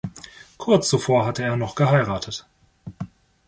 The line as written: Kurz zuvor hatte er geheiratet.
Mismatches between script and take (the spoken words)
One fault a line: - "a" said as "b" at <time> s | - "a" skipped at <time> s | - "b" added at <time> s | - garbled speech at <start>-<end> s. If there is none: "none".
- "noch" added at 1.6 s